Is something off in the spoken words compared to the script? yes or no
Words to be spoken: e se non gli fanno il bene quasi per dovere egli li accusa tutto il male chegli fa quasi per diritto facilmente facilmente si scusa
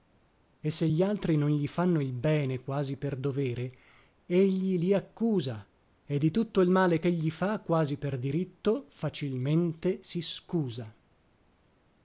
yes